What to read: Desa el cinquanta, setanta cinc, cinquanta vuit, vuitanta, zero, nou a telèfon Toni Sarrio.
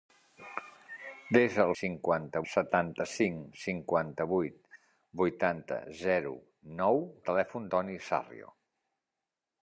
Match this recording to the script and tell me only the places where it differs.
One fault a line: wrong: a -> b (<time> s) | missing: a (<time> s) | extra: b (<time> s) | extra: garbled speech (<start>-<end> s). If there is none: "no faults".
no faults